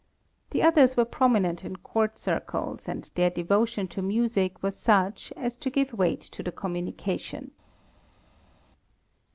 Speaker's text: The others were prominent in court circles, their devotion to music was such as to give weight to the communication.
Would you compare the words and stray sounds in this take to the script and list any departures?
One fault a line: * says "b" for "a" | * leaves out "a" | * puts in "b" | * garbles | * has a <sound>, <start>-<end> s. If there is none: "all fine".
* puts in "and"